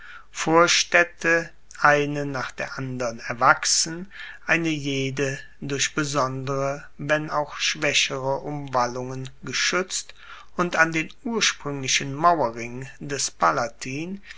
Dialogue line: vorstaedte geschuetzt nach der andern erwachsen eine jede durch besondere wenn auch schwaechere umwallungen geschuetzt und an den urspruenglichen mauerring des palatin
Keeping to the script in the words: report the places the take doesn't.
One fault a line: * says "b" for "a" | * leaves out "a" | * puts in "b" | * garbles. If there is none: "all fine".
* says "eine" for "geschuetzt"